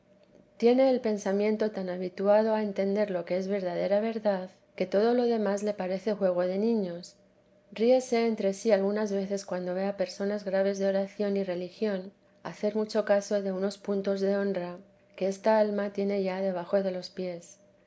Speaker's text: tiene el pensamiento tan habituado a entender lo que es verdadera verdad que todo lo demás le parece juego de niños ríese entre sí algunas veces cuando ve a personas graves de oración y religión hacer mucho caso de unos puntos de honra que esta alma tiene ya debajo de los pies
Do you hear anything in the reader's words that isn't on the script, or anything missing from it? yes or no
no